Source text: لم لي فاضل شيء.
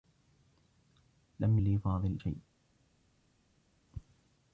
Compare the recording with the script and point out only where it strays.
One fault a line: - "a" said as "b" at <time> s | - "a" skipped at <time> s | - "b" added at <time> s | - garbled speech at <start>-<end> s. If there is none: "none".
none